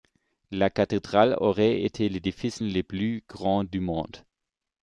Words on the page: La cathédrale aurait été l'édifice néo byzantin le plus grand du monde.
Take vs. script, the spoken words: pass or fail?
fail